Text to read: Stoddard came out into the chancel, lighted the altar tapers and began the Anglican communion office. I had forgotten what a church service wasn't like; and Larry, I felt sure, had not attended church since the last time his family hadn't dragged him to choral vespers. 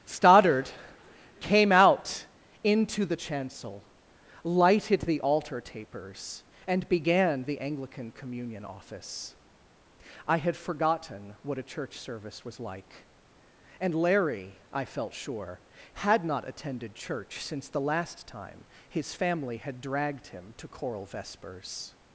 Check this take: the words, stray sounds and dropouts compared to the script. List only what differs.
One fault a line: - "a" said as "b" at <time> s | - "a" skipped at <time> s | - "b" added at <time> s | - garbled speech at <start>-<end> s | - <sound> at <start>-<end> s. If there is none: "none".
- "wasn't" said as "was" at 12.5 s
- "hadn't" said as "had" at 19.6 s